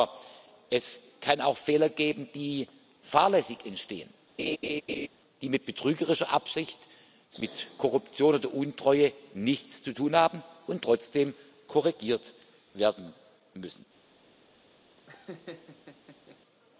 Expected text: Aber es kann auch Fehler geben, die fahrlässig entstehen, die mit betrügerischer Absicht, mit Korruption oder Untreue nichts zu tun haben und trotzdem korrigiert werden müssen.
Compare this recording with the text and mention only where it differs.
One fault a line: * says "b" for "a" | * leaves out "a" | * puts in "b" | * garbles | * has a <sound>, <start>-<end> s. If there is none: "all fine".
* has a laugh, 4.4-5.1 s
* has a laugh, 15.0-16.4 s